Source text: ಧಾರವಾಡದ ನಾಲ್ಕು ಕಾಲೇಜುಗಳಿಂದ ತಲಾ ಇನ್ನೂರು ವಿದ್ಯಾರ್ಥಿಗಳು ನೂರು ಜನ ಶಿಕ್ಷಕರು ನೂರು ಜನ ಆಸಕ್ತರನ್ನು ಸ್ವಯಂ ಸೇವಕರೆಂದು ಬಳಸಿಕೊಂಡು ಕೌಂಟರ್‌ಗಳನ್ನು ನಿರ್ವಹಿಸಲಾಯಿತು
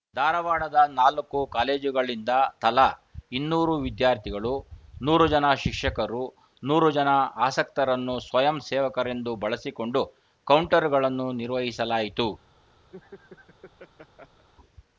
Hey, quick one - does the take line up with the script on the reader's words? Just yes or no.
yes